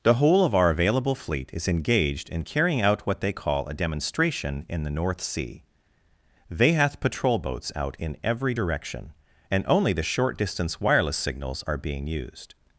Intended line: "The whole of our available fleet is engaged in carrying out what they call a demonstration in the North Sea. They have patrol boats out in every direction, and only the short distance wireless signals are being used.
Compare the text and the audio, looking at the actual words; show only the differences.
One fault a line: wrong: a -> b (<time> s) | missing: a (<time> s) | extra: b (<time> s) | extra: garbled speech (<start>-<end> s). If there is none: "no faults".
wrong: have -> hath (6.7 s)